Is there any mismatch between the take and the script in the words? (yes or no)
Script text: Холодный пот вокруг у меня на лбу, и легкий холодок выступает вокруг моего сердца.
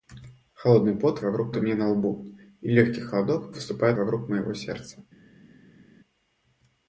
no